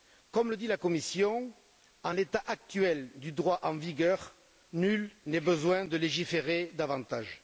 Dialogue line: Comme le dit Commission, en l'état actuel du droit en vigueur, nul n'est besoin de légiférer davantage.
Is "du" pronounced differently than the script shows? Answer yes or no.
no